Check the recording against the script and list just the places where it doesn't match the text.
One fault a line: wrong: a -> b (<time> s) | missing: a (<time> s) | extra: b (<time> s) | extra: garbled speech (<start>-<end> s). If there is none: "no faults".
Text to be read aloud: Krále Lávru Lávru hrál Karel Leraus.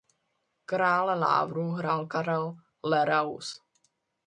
missing: Lávru (1.7 s)